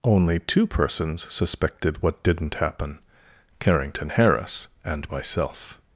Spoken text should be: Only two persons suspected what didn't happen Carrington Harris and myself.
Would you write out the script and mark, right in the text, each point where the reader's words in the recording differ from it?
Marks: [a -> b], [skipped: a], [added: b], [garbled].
Only two persons suspected what didn't happen Carrington Harris and myself.